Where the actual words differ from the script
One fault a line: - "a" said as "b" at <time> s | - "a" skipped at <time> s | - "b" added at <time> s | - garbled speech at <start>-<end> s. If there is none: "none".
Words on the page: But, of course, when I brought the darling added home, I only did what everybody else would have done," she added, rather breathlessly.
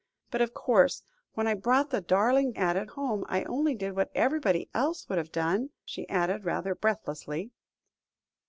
none